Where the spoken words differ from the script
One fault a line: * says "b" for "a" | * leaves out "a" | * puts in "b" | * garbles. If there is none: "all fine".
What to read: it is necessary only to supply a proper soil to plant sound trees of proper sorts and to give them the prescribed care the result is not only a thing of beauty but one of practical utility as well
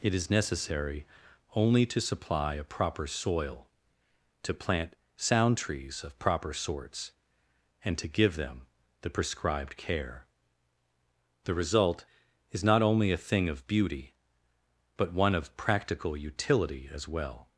all fine